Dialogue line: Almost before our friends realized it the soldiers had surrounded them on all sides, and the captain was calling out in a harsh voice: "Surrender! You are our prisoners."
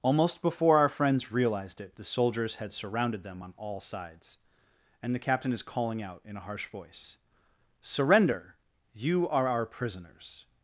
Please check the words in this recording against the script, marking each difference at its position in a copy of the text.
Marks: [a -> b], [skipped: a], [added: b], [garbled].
Almost before our friends realized it the soldiers had surrounded them on all sides, and the captain [was -> is] calling out in a harsh voice: "Surrender! You are our prisoners."